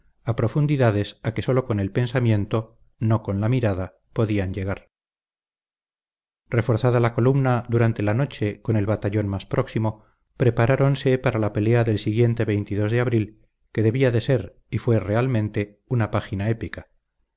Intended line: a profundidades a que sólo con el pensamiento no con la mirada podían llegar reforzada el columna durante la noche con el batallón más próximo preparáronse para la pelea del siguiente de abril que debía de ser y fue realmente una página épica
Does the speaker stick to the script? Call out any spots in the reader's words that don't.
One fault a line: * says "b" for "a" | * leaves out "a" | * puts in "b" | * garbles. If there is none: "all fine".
* says "la" for "el"